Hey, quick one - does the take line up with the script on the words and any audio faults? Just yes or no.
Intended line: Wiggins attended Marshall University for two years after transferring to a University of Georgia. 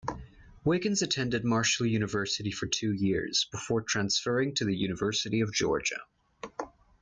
no